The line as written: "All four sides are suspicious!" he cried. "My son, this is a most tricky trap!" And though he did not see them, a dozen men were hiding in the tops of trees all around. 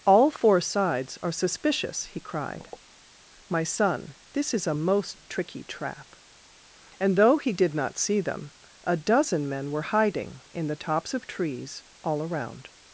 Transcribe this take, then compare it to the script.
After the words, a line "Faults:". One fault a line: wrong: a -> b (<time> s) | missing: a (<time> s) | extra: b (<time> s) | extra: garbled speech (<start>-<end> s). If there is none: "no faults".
"All four sides are suspicious!" he cried. "My son, this is a most tricky trap!" And though he did not see them, a dozen men were hiding in the tops of trees all around.
Faults:
no faults